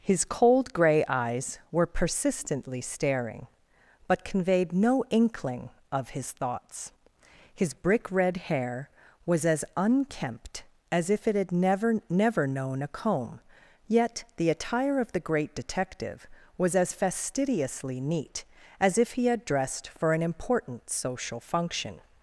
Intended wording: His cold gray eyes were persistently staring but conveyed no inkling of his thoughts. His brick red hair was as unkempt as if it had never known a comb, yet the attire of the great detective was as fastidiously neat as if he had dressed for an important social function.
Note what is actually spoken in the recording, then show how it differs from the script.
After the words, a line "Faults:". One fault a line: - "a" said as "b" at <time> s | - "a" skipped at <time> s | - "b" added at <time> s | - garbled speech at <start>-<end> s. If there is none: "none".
His cold gray eyes were persistently staring but conveyed no inkling of his thoughts. His brick red hair was as unkempt as if it had never never known a comb, yet the attire of the great detective was as fastidiously neat as if he had dressed for an important social function.
Faults:
- "never" added at 12.1 s